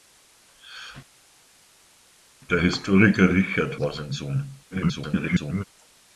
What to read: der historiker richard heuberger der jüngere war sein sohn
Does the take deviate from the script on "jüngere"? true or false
true